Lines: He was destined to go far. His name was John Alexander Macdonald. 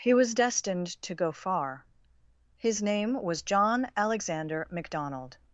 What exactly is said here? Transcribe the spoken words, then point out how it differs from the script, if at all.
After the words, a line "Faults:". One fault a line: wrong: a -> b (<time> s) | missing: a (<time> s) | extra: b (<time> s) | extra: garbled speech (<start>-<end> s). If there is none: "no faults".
He was destined to go far. His name was John Alexander Macdonald.
Faults:
no faults